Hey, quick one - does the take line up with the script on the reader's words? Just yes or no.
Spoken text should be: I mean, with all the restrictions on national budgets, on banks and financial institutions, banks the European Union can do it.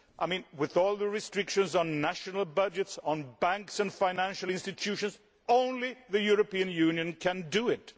no